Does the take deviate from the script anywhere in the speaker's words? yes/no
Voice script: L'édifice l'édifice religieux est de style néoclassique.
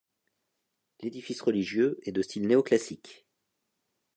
yes